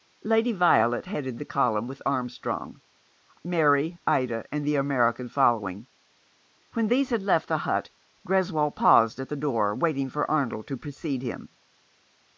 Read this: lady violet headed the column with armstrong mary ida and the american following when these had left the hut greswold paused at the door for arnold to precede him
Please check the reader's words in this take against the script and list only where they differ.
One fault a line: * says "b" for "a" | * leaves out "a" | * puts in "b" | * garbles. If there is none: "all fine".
* puts in "waiting"